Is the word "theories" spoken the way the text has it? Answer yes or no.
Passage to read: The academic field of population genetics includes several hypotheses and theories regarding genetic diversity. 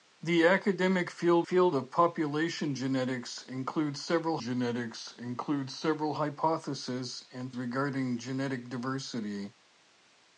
no